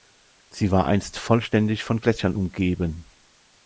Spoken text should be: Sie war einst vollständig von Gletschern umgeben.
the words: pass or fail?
pass